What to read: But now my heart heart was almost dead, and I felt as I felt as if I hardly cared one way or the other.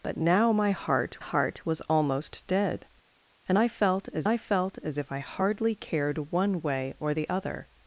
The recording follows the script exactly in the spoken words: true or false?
true